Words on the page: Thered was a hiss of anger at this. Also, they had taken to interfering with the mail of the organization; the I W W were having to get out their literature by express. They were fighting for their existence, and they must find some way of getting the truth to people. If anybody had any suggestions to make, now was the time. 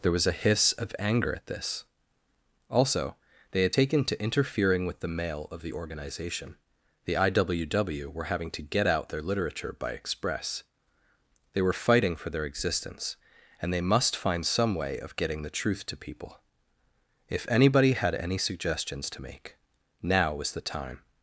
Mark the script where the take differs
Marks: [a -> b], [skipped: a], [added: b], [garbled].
[Thered -> There] was a hiss of anger at this. Also, they had taken to interfering with the mail of the organization; the I W W were having to get out their literature by express. They were fighting for their existence, and they must find some way of getting the truth to people. If anybody had any suggestions to make, now was the time.